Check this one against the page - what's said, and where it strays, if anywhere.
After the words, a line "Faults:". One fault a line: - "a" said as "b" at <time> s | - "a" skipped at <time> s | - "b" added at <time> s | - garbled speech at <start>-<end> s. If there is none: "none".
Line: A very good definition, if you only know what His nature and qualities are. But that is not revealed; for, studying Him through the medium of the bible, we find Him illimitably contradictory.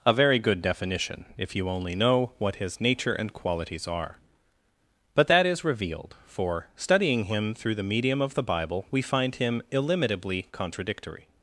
A very good definition, if you only know what His nature and qualities are. But that is revealed; for, studying Him through the medium of the bible, we find Him illimitably contradictory.
Faults:
- "not" skipped at 5.6 s